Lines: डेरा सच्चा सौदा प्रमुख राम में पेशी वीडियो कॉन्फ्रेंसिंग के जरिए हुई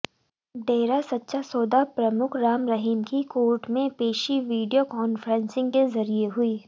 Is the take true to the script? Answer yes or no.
no